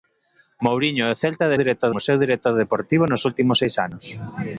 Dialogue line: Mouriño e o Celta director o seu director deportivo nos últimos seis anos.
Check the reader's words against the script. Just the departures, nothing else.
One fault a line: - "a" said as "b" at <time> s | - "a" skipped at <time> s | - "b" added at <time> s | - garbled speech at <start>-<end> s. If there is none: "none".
none